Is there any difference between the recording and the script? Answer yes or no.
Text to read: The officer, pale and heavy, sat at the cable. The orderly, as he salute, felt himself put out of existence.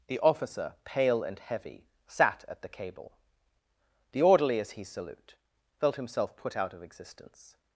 no